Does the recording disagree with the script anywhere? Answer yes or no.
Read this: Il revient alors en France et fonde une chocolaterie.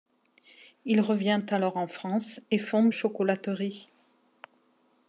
yes